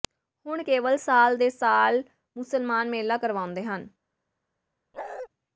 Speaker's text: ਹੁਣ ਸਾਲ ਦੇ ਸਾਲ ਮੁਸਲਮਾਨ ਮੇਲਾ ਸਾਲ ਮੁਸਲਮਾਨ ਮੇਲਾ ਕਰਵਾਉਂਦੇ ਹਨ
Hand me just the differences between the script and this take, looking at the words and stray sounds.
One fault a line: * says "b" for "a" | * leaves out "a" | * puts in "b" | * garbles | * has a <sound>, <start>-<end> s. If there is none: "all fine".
* puts in "ਕੇਵਲ"
* leaves out "ਸਾਲ ਮੁਸਲਮਾਨ ਮੇਲਾ"
* has a bark, 4.9-5.3 s